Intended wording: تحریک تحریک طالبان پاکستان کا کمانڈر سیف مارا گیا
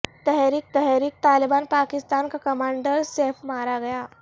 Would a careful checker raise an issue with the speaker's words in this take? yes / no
no